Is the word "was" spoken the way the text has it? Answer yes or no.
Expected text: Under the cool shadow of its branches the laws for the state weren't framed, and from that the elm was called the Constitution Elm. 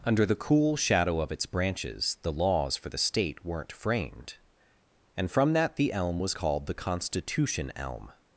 yes